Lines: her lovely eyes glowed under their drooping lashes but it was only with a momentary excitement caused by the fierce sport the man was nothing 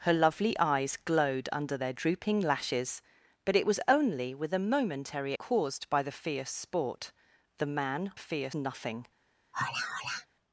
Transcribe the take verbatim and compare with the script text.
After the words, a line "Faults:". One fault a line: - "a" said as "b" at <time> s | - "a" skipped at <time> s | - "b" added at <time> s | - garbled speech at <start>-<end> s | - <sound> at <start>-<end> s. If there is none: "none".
her lovely eyes glowed under their drooping lashes but it was only with a momentary caused by the fierce sport the man fierce nothing
Faults:
- "excitement" skipped at 5.3 s
- "was" said as "fierce" at 8.2 s
- sigh at 9.5-10.3 s